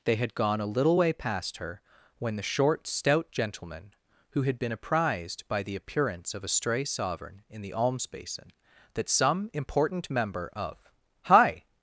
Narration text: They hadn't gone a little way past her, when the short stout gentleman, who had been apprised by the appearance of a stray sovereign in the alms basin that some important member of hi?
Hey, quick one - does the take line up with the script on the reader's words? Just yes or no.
no